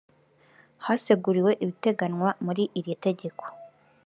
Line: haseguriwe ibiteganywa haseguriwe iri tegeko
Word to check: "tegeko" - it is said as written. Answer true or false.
true